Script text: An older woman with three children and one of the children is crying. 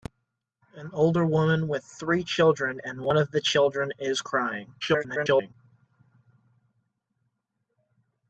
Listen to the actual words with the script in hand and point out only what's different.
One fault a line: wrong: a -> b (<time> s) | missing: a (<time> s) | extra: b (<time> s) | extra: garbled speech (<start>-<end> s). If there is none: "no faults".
extra: garbled speech (4.8-5.5 s)